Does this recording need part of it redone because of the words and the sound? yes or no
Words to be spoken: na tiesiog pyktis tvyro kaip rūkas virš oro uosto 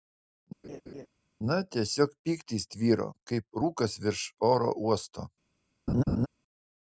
yes